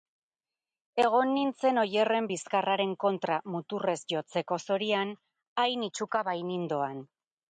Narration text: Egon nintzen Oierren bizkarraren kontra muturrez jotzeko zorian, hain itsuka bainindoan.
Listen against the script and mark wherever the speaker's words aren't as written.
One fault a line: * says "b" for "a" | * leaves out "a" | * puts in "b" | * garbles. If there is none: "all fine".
all fine